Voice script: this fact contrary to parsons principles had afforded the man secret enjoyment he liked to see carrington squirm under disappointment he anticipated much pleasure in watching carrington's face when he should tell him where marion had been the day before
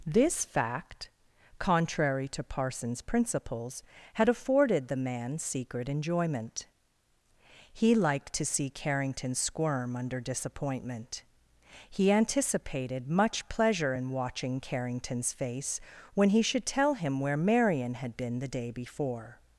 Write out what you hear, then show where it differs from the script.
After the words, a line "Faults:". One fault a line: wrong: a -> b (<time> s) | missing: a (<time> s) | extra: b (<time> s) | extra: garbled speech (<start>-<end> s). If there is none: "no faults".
this fact contrary to parsons principles had afforded the man secret enjoyment he liked to see carrington squirm under disappointment he anticipated much pleasure in watching carrington's face when he should tell him where marion had been the day before
Faults:
no faults